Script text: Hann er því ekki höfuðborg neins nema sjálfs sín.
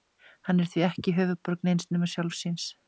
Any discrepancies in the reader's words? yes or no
no